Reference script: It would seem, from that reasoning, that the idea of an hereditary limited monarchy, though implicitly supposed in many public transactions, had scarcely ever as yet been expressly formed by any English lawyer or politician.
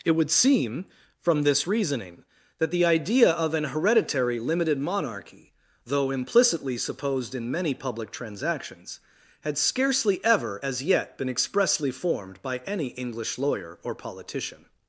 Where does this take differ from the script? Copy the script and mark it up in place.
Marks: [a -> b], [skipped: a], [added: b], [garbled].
It would seem, from [that -> this] reasoning, that the idea of an hereditary limited monarchy, though implicitly supposed in many public transactions, had scarcely ever as yet been expressly formed by any English lawyer or politician.